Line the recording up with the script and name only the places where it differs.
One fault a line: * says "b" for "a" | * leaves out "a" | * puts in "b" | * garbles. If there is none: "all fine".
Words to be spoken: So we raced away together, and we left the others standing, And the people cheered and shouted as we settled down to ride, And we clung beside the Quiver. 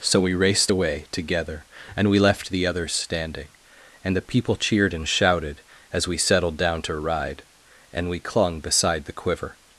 all fine